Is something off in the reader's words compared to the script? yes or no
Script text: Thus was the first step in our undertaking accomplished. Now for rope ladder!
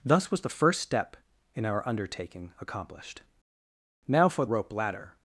no